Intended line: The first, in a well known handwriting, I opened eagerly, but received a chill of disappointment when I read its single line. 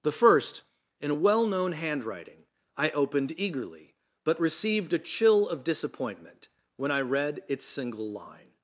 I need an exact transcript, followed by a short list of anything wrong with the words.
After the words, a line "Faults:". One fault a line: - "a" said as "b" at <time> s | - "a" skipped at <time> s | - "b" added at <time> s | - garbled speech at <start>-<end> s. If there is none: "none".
The first, in a well known handwriting, I opened eagerly, but received a chill of disappointment when I read its single line.
Faults:
none